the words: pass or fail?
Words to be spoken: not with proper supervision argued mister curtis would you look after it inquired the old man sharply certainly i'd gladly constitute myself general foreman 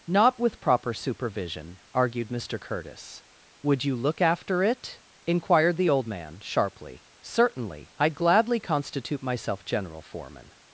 pass